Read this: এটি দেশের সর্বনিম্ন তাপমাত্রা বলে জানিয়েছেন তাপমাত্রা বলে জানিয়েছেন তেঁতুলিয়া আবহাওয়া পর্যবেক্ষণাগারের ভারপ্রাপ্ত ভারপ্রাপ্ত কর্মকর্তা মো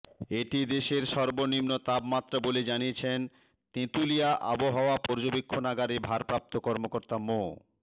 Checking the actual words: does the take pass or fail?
fail